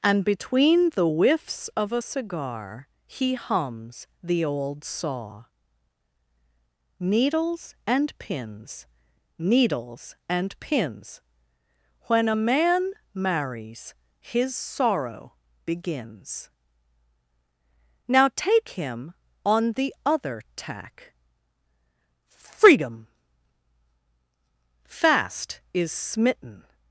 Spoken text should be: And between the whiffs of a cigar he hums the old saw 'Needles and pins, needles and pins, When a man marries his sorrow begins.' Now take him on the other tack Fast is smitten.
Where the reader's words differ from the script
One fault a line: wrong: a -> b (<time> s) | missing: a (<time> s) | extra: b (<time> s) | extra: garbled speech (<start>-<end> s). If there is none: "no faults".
extra: freedom (22.3 s)